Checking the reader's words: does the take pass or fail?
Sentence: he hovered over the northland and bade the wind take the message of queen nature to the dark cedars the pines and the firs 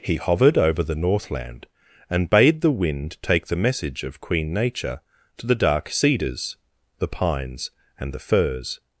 pass